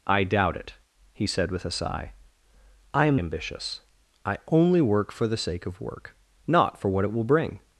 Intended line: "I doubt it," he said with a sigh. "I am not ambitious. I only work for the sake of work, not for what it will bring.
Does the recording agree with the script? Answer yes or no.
no